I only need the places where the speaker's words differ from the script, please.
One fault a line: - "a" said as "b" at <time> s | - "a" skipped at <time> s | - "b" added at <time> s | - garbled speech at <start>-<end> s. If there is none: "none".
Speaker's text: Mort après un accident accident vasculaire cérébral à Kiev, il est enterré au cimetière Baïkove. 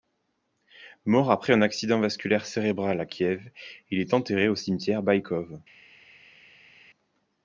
- "accident" skipped at 2.0 s